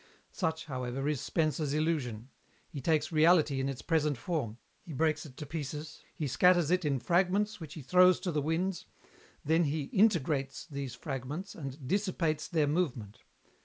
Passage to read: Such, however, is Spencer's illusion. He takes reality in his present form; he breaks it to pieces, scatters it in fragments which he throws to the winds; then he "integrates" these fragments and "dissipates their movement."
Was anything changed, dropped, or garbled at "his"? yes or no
yes